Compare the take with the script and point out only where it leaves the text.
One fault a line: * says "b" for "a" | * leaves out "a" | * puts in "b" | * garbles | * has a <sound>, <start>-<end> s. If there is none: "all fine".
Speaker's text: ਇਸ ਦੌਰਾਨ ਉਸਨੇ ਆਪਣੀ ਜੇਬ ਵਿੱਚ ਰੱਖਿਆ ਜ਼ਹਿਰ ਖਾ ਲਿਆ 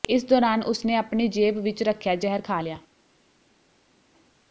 all fine